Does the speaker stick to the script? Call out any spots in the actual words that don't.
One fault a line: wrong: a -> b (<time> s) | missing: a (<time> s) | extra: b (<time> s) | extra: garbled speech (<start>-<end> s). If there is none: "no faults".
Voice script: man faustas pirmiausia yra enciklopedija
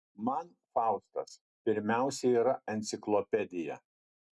no faults